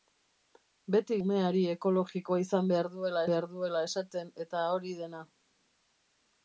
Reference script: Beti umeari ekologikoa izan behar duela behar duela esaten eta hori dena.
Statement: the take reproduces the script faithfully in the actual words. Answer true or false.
true